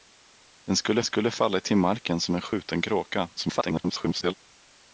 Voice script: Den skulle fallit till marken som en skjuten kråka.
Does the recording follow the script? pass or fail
fail